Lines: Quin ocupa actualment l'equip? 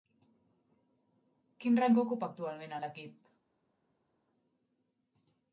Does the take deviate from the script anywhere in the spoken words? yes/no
yes